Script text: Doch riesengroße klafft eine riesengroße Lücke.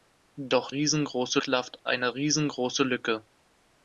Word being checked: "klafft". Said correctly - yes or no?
yes